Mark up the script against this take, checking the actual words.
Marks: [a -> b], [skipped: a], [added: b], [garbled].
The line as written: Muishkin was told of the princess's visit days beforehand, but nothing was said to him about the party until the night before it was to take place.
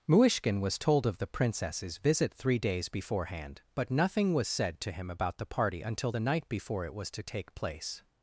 Muishkin was told of the princess's visit [added: three] days beforehand, but nothing was said to him about the party until the night before it was to take place.